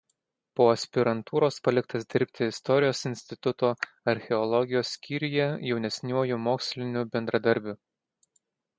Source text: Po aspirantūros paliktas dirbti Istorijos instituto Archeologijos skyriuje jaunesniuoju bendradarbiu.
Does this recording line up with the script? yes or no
no